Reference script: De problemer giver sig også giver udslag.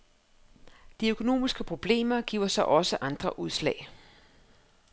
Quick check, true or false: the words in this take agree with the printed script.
false